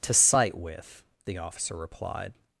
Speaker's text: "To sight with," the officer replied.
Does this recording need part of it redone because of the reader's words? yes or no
no